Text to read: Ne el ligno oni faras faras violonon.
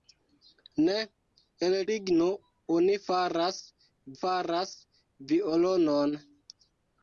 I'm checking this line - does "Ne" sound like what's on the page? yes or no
yes